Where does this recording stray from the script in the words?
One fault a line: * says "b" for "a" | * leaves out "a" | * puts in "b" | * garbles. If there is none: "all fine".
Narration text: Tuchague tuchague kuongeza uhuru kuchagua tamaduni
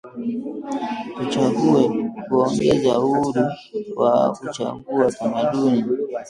* leaves out "tuchague"
* puts in "wa"